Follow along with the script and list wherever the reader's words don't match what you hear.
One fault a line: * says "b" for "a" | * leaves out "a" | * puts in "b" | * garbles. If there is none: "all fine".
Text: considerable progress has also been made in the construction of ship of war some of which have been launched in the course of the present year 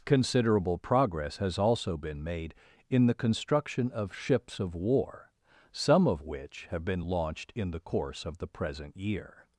* says "ships" for "ship"